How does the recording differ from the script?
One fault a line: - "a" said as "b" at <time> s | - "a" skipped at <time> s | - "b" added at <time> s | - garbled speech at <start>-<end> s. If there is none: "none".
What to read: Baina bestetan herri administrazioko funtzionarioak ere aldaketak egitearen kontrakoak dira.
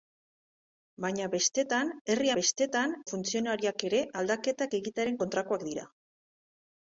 - "administrazioko" said as "bestetan" at 2.4 s